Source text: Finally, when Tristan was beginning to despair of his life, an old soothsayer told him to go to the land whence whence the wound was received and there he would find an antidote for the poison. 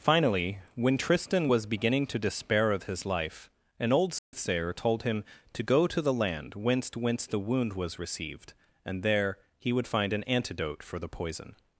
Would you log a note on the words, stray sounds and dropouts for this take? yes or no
yes